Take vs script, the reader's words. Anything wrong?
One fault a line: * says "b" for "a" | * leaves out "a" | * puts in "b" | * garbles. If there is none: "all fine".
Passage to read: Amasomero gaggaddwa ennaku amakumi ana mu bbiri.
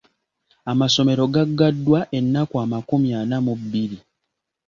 all fine